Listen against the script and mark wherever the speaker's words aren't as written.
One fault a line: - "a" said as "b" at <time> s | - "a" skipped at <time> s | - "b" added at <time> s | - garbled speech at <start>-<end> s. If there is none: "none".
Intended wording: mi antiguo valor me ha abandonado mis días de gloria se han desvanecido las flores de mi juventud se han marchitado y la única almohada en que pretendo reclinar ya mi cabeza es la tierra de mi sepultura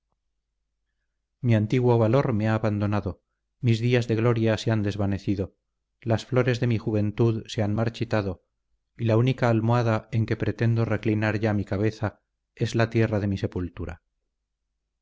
none